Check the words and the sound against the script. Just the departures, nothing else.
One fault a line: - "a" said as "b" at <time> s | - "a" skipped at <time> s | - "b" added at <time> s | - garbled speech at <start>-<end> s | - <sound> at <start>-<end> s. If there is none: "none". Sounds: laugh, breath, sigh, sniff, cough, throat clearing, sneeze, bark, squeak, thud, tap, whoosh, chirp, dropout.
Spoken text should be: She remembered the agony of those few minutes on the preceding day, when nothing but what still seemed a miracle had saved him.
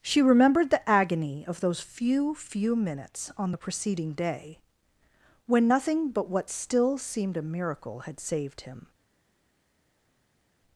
- "few" added at 2.3 s